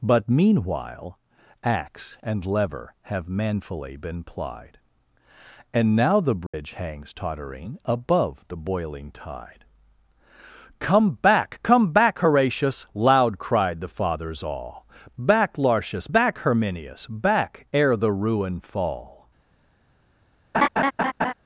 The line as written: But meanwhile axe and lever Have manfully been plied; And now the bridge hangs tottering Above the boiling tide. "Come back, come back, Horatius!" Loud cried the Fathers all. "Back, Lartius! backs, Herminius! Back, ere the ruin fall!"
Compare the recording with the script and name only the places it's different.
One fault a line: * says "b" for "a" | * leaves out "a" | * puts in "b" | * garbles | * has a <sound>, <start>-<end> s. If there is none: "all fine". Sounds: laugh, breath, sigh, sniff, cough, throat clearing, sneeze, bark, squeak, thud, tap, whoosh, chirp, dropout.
* has a dropout, 6.5-6.5 s
* says "back" for "backs"
* has a laugh, 20.5-21.3 s